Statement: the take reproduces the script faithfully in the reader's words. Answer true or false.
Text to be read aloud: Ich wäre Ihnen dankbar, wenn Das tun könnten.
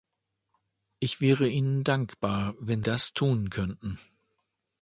true